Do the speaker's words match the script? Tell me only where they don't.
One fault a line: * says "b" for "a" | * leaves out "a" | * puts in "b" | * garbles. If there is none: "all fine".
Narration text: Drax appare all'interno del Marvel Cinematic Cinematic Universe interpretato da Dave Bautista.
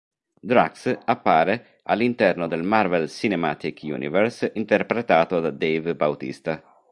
* leaves out "Cinematic"